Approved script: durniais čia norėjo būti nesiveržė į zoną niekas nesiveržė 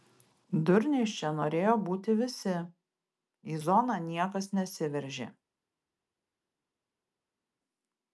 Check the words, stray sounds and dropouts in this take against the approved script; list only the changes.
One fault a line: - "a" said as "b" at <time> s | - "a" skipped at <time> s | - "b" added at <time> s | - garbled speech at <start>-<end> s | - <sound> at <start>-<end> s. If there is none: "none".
- "nesiveržė" said as "visi" at 2.2 s